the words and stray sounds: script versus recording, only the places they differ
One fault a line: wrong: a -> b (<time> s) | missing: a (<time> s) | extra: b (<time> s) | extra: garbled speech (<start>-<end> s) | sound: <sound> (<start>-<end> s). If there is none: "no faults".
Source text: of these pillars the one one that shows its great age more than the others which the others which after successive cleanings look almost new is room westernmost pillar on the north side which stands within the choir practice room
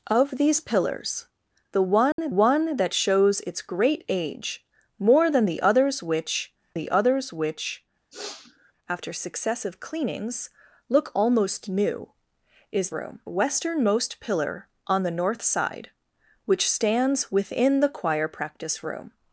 sound: dropout (2.1-2.2 s)
sound: sniff (8.1-8.7 s)